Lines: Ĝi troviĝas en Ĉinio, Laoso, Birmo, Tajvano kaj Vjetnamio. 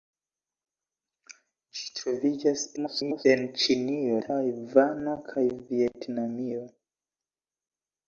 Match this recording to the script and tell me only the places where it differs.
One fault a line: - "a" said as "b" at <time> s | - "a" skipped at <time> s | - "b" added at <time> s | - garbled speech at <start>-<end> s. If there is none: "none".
- garbled speech at 2.8-3.3 s
- "Laoso Birmo" skipped at 4.2 s